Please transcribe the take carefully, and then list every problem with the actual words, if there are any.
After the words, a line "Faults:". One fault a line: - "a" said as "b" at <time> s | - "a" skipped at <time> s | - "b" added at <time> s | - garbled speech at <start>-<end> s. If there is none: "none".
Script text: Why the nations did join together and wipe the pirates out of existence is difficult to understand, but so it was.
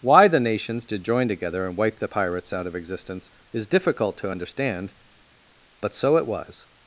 Why the nations did join together and wipe the pirates out of existence is difficult to understand, but so it was.
Faults:
none